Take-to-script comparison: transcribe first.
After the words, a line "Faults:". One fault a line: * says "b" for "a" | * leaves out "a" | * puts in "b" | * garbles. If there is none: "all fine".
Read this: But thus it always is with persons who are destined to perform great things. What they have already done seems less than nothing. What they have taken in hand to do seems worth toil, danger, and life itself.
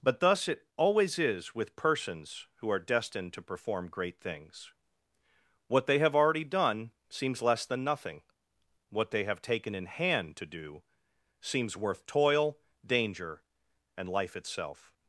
But thus it always is with persons who are destined to perform great things. What they have already done seems less than nothing. What they have taken in hand to do seems worth toil, danger, and life itself.
Faults:
all fine